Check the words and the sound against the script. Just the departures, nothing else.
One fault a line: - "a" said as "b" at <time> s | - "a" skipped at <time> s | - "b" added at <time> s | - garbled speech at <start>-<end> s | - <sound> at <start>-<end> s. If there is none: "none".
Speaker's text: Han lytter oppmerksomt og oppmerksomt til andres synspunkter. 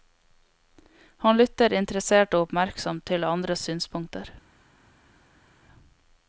- "oppmerksomt" said as "interessert" at 1.8 s